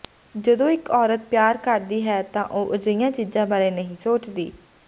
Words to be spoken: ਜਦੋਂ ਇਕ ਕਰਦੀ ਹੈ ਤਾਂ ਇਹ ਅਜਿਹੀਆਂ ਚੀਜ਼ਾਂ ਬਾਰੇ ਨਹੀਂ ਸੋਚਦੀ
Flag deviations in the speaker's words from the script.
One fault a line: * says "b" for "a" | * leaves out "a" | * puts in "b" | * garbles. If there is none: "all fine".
* puts in "ਔਰਤ ਪਿਆਰ"
* says "ਉਹ" for "ਇਹ"